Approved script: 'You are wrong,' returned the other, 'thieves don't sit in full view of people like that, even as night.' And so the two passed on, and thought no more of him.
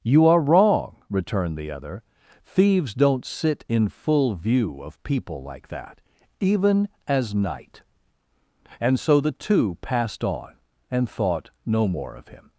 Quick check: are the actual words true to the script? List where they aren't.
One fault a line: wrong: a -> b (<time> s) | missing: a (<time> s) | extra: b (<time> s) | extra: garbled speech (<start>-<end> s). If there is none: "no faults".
no faults